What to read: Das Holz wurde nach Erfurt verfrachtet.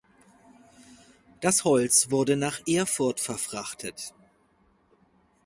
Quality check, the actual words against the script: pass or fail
pass